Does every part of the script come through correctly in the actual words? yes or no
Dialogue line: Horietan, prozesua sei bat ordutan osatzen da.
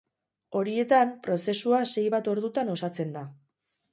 yes